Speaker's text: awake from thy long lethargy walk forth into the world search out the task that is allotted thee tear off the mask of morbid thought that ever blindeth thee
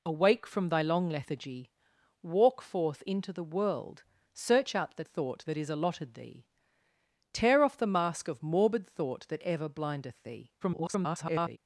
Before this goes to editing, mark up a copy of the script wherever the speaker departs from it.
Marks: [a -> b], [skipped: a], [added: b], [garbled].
awake from thy long lethargy walk forth into the world search out the [task -> thought] that is allotted thee tear off the mask of morbid thought that ever blindeth thee [garbled]